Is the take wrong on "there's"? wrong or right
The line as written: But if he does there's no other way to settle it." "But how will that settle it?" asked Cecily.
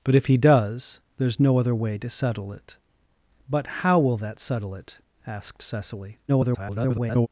right